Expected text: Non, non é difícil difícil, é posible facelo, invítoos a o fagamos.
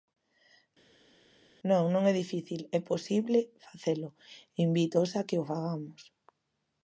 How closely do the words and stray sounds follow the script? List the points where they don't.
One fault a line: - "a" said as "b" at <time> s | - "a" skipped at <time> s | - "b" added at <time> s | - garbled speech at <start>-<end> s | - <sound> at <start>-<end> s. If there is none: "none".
- "difícil" skipped at 2.6 s
- "que" added at 5.3 s